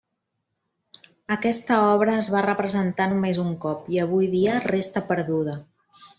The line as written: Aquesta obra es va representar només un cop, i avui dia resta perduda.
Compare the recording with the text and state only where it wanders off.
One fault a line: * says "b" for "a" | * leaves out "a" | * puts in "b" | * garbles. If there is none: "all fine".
all fine